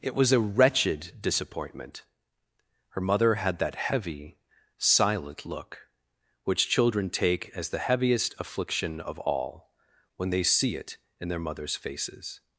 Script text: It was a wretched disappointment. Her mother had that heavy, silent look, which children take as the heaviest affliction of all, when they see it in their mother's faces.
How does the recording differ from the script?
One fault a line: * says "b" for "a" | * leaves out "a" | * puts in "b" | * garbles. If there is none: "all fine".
all fine